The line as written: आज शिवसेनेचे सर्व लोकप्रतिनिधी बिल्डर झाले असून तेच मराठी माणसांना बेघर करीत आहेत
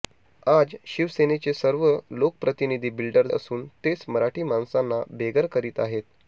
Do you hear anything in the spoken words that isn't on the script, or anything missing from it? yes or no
yes